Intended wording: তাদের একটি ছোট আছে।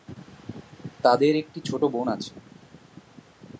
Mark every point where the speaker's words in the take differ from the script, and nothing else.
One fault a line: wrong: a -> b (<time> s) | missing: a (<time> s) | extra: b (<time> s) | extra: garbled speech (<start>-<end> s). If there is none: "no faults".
extra: বোন (1.8 s)